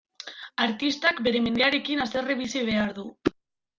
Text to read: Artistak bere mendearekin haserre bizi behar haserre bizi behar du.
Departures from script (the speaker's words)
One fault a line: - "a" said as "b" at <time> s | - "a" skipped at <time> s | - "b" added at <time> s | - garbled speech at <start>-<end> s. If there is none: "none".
- "haserre bizi behar" skipped at 2.9 s